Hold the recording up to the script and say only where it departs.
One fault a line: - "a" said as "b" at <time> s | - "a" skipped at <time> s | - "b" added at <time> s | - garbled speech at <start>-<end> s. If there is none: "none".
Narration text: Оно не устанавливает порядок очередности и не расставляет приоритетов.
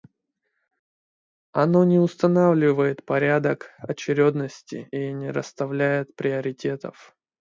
none